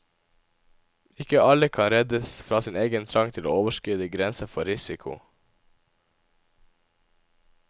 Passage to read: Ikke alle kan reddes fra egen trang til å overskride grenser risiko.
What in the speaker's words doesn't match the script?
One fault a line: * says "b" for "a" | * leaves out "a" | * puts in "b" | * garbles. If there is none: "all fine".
* puts in "sin"
* puts in "for"